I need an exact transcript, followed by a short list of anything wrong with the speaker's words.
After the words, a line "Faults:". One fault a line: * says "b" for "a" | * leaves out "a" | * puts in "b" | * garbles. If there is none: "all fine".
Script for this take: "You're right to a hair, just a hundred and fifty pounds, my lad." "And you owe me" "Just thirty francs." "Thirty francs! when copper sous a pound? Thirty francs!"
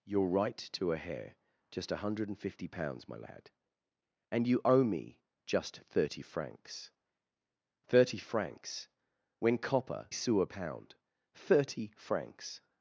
"You're right to a hair, just a hundred and fifty pounds, my lad." "And you owe me" "Just thirty francs." "Thirty francs! when copper sous a pound? Thirty francs!"
Faults:
all fine